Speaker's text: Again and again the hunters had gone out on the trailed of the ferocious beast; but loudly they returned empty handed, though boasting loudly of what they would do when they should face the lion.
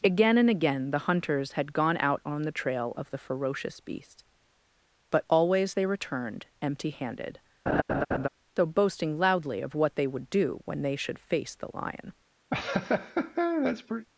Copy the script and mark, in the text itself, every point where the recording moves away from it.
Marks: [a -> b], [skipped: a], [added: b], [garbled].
Again and again the hunters had gone out on the [trailed -> trail] of the ferocious beast; but [loudly -> always] they returned empty handed, though boasting loudly of what they would do when they should face the lion.